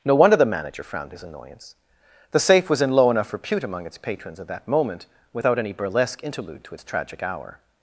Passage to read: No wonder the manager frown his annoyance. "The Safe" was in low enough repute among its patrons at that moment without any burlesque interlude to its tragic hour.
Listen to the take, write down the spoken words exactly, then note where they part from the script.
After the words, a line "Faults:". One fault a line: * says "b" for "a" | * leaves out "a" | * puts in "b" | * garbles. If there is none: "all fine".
No wonder the manager frowned his annoyance. "The Safe" was in low enough repute among its patrons at that moment without any burlesque interlude to its tragic hour.
Faults:
* says "frowned" for "frown"